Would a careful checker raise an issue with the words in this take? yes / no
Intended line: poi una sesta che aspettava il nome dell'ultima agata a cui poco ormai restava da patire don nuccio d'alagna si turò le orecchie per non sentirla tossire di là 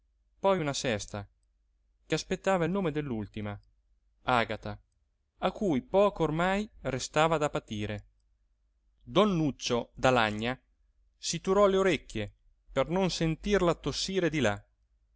no